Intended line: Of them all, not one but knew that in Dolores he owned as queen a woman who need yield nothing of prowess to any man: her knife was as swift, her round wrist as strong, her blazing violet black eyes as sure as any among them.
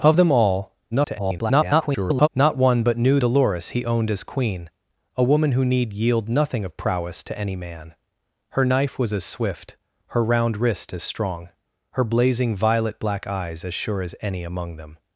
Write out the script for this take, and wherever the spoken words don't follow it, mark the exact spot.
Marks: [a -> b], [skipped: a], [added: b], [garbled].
Of them all, [garbled] not one but knew [skipped: that in] Dolores he owned as queen a woman who need yield nothing of prowess to any man: her knife was as swift, her round wrist as strong, her blazing violet black eyes as sure as any among them.